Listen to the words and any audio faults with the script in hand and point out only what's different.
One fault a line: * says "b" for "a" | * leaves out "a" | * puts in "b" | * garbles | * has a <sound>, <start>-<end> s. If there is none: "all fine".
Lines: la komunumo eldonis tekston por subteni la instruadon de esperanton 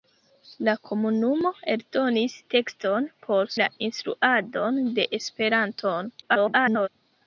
* leaves out "subteni"
* garbles